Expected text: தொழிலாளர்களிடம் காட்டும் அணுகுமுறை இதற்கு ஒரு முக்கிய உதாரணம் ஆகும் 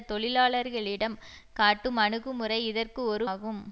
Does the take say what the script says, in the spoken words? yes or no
no